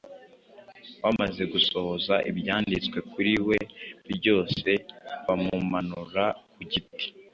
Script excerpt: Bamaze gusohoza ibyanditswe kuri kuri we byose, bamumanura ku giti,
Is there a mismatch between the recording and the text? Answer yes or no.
yes